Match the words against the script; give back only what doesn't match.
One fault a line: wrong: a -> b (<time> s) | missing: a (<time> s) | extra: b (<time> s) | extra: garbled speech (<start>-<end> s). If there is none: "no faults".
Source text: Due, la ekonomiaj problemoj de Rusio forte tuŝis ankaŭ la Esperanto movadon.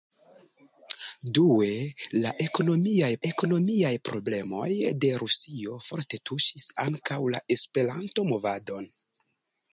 extra: ekonomiaj (3.3 s)